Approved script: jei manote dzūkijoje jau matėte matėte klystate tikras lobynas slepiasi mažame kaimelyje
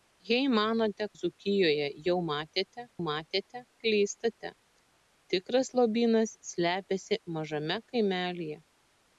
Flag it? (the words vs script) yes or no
no